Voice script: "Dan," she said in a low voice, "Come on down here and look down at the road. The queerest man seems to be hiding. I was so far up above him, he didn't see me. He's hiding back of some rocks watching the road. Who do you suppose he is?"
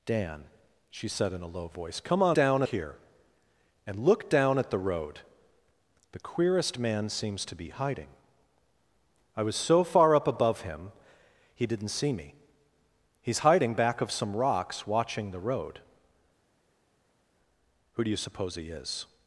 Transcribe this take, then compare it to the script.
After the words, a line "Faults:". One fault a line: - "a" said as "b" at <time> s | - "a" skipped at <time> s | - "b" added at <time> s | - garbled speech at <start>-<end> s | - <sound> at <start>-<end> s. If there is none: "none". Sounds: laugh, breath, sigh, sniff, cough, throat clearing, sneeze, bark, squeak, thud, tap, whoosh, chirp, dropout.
"Dan," she said in a low voice, "Come on down here and look down at the road. The queerest man seems to be hiding. I was so far up above him, he didn't see me. He's hiding back of some rocks watching the road. Who do you suppose he is?"
Faults:
none